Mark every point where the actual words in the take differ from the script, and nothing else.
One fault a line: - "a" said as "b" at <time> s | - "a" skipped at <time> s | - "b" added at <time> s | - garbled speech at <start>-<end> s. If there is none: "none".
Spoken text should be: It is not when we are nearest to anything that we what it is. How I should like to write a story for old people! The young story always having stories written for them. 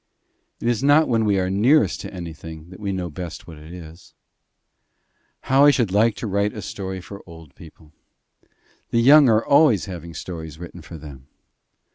- "know best" added at 2.9 s
- "story" said as "are" at 9.3 s